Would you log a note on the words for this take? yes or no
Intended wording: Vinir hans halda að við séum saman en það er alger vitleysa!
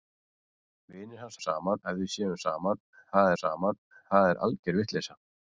yes